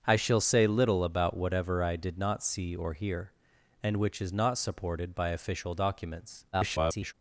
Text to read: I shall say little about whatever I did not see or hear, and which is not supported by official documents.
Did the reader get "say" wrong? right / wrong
right